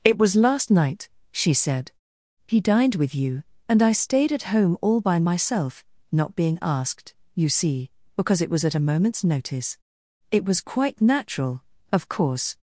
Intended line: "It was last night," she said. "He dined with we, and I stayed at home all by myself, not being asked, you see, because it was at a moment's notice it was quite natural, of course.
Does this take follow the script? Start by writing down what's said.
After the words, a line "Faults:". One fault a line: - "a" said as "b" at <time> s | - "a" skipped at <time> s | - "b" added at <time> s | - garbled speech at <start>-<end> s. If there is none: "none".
"It was last night," she said. "He dined with you, and I stayed at home all by myself, not being asked, you see, because it was at a moment's notice it was quite natural, of course.
Faults:
- "we" said as "you" at 3.1 s